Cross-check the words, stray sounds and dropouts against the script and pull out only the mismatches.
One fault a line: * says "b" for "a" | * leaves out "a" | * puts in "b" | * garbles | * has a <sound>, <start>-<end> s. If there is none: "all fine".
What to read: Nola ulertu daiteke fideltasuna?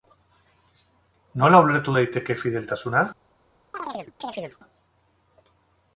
* has a chirp, 3.7-4.6 s